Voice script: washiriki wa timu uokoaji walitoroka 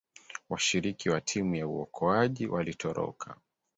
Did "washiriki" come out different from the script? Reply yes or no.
no